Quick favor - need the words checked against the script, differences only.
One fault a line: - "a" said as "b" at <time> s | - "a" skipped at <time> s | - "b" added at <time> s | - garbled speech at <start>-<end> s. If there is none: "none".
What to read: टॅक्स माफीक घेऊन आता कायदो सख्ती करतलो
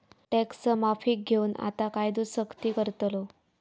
none